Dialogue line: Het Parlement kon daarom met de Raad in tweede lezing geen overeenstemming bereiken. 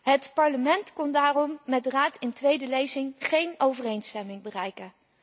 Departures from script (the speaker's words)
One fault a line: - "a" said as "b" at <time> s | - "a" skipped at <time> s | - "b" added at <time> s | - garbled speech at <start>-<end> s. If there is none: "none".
none